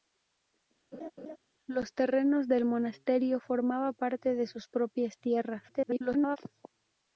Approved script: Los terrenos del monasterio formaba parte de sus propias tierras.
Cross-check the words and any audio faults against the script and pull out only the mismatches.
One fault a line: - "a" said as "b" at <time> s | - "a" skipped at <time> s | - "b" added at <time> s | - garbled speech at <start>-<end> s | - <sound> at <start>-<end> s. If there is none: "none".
- laugh at 0.9-1.4 s
- garbled speech at 5.7-6.4 s